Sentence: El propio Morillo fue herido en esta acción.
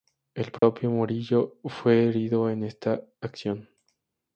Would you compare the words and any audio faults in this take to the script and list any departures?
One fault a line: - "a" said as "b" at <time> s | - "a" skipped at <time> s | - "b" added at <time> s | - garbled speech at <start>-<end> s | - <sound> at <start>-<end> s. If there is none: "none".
- dropout at 0.6-0.6 s